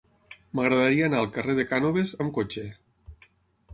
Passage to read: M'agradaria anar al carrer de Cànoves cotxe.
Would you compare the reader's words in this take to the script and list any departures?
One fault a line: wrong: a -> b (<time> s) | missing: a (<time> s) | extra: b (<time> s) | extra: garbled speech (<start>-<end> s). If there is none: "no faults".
extra: amb (2.3 s)